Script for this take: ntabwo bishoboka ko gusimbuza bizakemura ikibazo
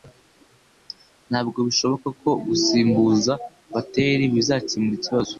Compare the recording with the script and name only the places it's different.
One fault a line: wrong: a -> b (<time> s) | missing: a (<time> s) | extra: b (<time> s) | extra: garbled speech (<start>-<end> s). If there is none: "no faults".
extra: bateri (3.7 s)